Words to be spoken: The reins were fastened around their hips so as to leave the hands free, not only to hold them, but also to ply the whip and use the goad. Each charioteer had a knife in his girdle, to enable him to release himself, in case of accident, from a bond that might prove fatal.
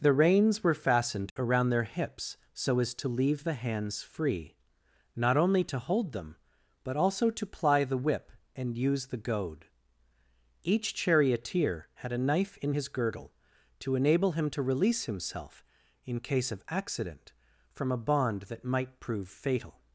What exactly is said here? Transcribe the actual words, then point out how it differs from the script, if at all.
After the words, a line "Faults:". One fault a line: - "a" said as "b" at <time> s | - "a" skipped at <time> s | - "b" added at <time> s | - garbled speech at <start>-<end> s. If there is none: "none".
The reins were fastened around their hips so as to leave the hands free, not only to hold them, but also to ply the whip and use the goad. Each charioteer had a knife in his girdle, to enable him to release himself, in case of accident, from a bond that might prove fatal.
Faults:
none